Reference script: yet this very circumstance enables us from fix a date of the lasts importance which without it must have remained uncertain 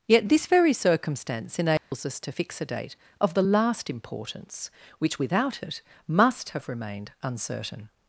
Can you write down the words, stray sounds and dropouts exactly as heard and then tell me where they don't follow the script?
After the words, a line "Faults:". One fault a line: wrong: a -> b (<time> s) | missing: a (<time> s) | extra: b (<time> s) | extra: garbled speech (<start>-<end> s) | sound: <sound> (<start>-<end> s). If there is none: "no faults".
yet this very circumstance enables us to fix a date of the last importance which without it must have remained uncertain
Faults:
sound: dropout (1.8-1.9 s)
wrong: from -> to (2.2 s)
wrong: lasts -> last (3.4 s)